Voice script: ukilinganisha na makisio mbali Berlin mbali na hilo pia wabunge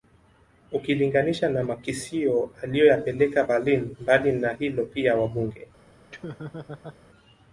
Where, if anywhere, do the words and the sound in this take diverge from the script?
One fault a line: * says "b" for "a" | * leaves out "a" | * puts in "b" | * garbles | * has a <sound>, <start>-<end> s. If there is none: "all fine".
* says "aliyoyapeleka" for "mbali"
* has a laugh, 6.1-7.0 s